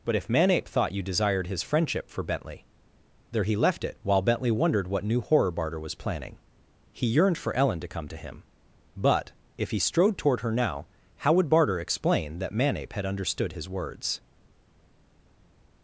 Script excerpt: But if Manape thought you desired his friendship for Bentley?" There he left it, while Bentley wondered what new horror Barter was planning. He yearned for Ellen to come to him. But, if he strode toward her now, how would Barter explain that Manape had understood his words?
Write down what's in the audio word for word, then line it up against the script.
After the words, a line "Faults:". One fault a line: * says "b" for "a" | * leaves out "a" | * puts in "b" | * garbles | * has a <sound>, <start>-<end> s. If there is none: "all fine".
But if Manape thought you desired his friendship for Bentley?" There he left it, while Bentley wondered what new horror Barter was planning. He yearned for Ellen to come to him. But, if he strode toward her now, how would Barter explain that Manape had understood his words?
Faults:
all fine